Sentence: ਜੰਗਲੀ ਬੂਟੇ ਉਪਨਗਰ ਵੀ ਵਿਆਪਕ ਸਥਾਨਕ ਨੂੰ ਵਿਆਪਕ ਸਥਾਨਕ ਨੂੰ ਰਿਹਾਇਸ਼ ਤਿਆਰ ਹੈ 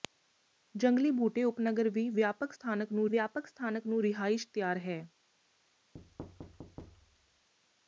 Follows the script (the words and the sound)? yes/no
no